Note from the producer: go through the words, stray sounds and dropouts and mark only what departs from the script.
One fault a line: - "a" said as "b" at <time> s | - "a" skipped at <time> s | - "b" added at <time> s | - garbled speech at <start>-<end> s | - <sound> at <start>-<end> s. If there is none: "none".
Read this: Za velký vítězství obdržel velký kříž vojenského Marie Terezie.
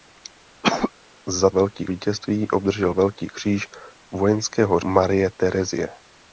- cough at 0.6-0.9 s